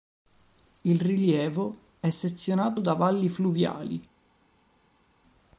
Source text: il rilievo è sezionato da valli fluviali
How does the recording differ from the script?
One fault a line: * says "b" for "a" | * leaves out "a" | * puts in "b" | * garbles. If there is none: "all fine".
all fine